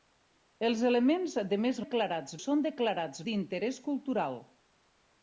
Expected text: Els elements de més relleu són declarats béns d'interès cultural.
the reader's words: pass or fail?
fail